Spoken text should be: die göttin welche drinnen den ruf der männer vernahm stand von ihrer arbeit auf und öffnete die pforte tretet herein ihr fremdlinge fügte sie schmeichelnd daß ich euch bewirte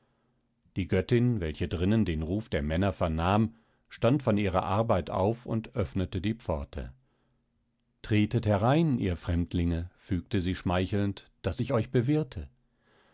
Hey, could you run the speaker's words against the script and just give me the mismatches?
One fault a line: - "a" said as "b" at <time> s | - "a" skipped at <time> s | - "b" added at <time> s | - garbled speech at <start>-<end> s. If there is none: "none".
none